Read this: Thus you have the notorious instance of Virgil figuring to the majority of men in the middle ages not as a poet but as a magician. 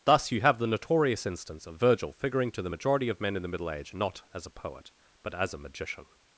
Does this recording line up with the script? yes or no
no